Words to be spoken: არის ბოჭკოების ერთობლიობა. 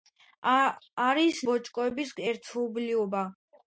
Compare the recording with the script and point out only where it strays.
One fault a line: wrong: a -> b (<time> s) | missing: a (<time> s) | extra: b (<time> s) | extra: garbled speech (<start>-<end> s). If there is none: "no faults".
no faults